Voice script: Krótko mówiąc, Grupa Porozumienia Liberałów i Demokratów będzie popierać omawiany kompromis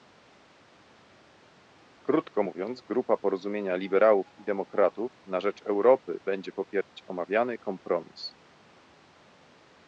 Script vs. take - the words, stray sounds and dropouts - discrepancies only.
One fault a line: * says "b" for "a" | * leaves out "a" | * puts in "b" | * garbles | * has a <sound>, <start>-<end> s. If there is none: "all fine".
* puts in "na rzecz Europy"
* has a dropout, 6.8-6.9 s